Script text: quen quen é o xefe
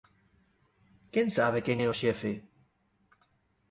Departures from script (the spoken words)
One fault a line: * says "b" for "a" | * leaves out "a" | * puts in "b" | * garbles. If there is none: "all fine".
* puts in "sabe"